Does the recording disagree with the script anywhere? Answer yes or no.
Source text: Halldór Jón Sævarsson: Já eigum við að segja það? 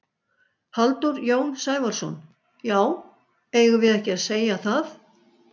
yes